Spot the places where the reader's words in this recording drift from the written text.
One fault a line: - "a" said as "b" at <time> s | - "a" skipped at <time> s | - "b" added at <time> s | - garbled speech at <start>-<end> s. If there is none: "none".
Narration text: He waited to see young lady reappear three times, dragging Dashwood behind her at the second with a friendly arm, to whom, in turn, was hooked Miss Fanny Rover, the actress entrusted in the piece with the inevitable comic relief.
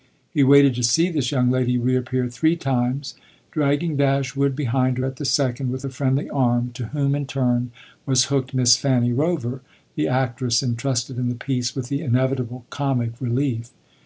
- "this" added at 1.1 s